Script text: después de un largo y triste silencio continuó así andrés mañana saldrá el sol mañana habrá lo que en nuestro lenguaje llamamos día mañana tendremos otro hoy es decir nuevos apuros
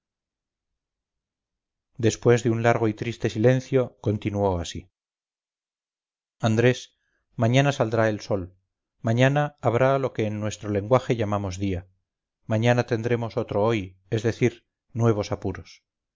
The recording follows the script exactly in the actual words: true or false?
true